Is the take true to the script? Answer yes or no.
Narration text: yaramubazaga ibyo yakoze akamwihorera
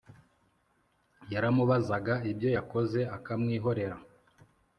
yes